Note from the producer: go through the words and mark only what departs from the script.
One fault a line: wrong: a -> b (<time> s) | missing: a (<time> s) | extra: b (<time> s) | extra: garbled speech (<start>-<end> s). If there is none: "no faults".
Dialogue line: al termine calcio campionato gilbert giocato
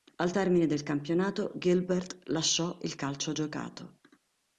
wrong: calcio -> del (0.7 s)
extra: lasciò il calcio (2.3 s)